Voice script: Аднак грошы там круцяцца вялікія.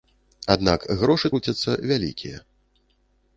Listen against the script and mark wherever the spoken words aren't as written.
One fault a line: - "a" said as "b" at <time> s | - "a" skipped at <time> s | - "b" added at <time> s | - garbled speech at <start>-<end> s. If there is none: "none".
- "там" skipped at 1.3 s